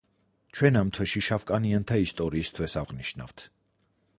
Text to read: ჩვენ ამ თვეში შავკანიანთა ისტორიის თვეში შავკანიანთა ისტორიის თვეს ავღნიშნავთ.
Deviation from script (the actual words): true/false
true